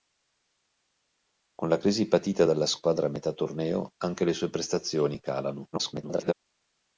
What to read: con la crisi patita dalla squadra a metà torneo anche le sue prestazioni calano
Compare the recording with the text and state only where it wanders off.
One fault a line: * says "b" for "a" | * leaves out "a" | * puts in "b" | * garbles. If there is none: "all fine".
* garbles